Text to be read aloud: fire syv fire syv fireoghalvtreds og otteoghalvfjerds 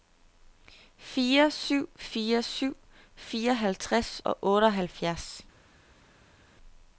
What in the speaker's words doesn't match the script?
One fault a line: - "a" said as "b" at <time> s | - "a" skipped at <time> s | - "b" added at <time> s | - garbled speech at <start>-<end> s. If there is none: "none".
none